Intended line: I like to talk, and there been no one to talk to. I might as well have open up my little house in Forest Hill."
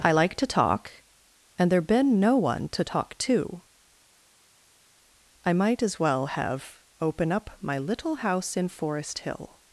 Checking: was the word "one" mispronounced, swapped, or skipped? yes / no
no